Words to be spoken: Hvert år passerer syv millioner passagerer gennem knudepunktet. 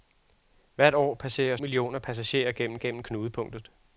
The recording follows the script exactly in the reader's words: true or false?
false